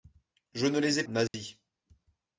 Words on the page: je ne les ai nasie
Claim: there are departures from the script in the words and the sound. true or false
true